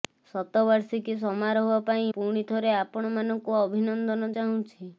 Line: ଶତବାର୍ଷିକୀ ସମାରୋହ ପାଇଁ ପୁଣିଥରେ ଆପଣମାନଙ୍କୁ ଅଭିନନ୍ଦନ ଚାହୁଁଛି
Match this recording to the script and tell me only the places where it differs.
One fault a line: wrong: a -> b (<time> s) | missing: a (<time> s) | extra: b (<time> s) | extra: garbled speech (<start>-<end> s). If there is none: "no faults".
no faults